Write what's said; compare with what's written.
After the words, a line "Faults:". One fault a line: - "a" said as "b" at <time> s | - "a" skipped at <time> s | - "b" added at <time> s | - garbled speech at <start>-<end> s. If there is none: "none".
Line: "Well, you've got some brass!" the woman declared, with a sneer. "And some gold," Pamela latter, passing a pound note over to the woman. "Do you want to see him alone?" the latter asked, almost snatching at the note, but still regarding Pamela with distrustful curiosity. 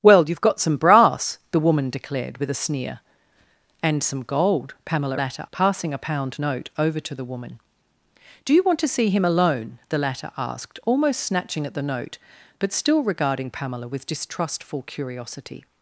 "Well, you've got some brass!" the woman declared, with a sneer. "And some gold," Pamela latter, passing a pound note over to the woman. "Do you want to see him alone?" the latter asked, almost snatching at the note, but still regarding Pamela with distrustful curiosity.
Faults:
none